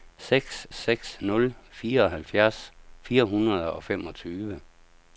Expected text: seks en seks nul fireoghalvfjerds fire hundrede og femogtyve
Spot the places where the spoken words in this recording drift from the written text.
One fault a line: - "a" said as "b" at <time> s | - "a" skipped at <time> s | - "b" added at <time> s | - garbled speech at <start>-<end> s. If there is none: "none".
- "en" skipped at 0.7 s